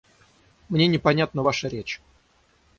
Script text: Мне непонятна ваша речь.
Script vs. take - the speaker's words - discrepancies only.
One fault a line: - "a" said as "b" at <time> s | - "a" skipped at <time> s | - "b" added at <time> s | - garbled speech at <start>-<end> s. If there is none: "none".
none